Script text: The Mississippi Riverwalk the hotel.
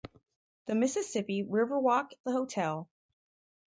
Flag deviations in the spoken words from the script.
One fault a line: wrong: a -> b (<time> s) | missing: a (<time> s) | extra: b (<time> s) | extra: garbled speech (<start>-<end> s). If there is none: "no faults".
no faults